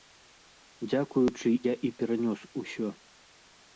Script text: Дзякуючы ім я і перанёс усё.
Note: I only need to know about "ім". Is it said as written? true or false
false